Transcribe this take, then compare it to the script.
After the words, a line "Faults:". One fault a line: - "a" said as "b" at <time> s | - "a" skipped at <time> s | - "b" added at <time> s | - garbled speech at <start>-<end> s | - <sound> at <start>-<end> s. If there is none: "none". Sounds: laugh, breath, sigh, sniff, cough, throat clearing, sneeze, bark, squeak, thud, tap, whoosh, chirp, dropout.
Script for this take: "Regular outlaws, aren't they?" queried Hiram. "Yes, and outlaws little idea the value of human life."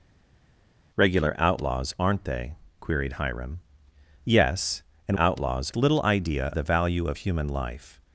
"Regular outlaws, aren't they?" queried Hiram. "Yes, and outlaws little idea the value of human life."
Faults:
none